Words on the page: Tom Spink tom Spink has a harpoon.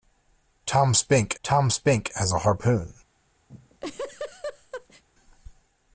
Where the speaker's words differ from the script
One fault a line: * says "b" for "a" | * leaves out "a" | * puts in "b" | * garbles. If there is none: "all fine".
all fine